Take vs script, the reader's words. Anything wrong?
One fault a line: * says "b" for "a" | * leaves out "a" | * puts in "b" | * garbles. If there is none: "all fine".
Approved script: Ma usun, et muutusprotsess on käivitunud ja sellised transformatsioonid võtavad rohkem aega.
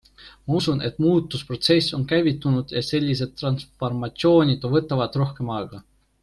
all fine